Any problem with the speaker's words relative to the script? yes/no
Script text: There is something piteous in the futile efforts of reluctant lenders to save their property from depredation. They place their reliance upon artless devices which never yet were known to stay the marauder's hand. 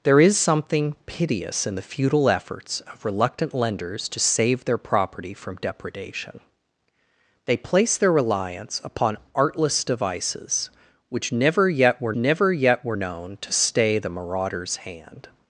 yes